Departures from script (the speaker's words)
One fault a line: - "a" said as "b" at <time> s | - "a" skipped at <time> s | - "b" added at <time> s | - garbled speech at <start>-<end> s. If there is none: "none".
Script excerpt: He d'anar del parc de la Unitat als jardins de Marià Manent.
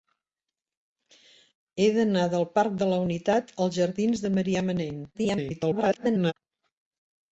- garbled speech at 5.1-6.3 s